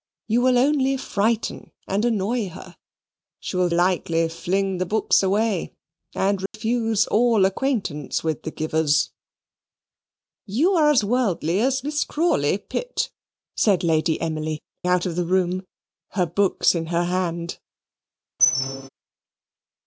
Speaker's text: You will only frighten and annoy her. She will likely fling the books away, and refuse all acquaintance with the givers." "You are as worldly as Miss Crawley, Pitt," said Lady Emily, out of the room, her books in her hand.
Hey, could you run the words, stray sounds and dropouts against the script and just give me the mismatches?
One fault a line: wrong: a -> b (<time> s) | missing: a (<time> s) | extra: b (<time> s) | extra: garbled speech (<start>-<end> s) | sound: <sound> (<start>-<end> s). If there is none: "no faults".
sound: dropout (6.5-6.5 s)
sound: squeak (18.4-18.9 s)